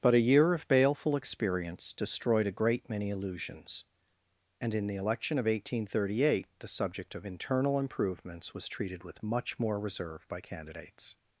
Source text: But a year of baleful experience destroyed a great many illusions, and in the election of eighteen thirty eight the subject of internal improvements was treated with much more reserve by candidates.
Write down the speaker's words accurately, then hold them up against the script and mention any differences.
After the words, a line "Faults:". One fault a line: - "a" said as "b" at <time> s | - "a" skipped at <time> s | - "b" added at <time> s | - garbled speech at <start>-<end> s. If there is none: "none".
But a year of baleful experience destroyed a great many illusions, and in the election of eighteen thirty eight the subject of internal improvements was treated with much more reserve by candidates.
Faults:
none